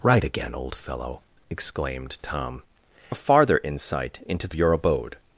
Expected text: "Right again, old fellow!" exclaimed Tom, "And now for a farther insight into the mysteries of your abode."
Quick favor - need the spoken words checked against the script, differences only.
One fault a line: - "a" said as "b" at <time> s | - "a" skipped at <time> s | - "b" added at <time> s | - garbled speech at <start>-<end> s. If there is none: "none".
- "And now for" skipped at 2.6 s
- "mysteries of" skipped at 4.5 s